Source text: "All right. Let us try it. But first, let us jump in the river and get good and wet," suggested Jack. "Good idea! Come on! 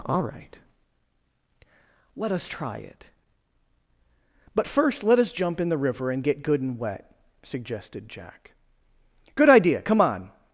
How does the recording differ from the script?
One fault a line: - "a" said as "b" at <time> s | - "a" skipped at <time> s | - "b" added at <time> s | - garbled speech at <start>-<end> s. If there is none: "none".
none